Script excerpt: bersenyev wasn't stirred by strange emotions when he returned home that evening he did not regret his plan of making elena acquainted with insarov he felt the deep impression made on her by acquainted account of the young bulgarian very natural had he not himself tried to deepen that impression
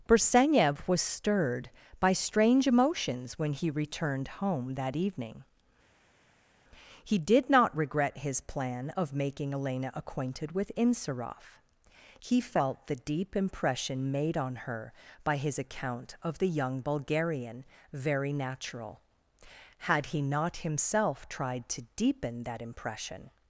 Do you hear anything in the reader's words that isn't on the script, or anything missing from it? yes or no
yes